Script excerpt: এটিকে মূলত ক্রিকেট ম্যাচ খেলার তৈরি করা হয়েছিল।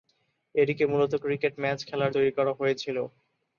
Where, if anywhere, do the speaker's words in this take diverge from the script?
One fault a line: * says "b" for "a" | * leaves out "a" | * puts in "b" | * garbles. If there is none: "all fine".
all fine